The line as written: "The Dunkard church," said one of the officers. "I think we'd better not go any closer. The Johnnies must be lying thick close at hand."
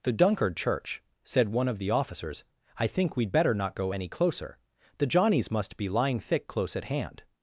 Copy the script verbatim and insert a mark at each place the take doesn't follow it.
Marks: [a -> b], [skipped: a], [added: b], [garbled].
"The Dunkard church," said one of the officers. "I think we'd better not go any closer. The Johnnies must be lying thick close at hand."